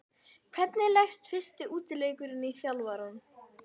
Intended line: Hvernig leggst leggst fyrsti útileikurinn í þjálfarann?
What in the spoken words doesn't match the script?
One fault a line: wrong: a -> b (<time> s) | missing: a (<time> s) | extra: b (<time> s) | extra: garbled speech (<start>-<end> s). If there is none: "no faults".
missing: leggst (1.3 s)